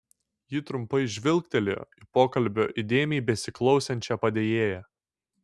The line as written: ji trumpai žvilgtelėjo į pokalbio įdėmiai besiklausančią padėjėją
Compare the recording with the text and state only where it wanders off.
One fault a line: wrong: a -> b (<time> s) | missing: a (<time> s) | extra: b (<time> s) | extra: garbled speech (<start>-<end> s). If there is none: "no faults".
no faults